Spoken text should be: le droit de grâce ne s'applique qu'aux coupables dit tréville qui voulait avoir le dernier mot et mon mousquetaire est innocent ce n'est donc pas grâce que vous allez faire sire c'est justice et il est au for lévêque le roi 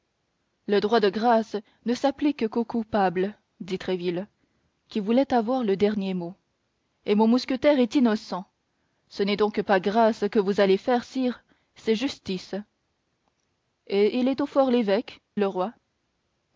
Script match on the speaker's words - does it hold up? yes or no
yes